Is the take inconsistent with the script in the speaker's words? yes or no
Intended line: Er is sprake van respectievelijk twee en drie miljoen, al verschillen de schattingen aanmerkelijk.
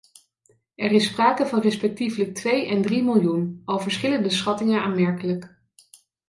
no